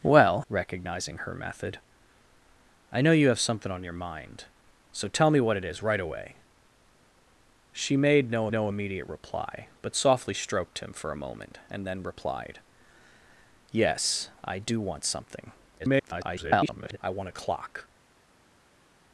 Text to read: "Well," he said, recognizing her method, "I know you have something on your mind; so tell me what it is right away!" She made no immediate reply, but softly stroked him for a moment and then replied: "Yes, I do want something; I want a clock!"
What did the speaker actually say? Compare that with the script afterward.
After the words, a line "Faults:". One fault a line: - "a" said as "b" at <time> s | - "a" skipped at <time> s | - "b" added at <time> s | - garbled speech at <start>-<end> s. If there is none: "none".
"Well," recognizing her method, "I know you have something on your mind; so tell me what it is right away!" She made no no immediate reply, but softly stroked him for a moment and then replied: "Yes, I do want something; [garbled] I want a clock!"
Faults:
- "he said" skipped at 0.4 s
- "no" added at 8.5 s
- garbled speech at 15.8-17.0 s